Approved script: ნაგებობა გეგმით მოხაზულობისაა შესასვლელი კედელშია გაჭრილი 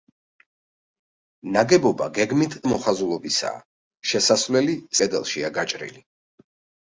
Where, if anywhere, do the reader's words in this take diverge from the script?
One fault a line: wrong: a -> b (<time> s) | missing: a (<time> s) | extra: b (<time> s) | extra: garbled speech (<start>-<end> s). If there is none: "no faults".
no faults